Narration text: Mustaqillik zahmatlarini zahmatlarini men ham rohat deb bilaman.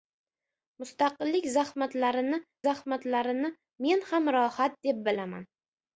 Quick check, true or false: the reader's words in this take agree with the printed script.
true